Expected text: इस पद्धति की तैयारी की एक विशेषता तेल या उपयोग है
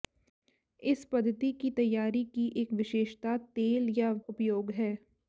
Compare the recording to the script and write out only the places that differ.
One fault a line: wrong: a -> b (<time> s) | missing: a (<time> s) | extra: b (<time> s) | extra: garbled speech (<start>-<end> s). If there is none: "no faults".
no faults